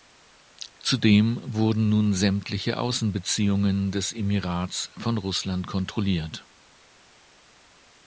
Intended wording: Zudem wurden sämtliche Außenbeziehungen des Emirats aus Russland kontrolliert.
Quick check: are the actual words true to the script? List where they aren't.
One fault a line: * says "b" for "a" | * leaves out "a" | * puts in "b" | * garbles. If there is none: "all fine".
* puts in "nun"
* says "von" for "aus"